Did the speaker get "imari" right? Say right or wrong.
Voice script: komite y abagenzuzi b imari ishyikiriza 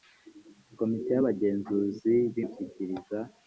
wrong